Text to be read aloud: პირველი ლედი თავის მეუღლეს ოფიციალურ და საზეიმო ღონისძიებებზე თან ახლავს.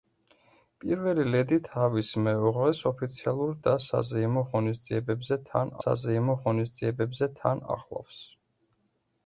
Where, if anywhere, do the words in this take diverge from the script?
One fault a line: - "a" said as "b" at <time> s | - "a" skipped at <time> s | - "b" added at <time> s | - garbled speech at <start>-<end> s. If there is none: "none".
- "საზეიმო ღონისძიებებზე თან" added at 5.8 s